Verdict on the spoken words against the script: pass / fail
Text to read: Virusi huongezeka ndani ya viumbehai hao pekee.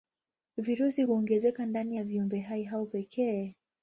pass